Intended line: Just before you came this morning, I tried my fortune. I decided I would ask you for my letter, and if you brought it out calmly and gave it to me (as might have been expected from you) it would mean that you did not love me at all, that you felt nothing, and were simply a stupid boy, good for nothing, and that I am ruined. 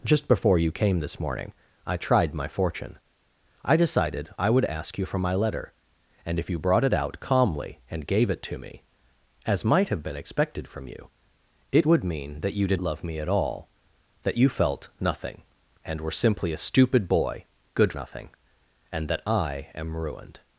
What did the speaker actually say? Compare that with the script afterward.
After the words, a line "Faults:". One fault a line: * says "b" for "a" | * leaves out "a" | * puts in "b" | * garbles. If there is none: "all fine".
Just before you came this morning, I tried my fortune. I decided I would ask you for my letter, and if you brought it out calmly and gave it to me (as might have been expected from you) it would mean that you did love me at all, that you felt nothing, and were simply a stupid boy, good nothing, and that I am ruined.
Faults:
* leaves out "not"
* leaves out "for"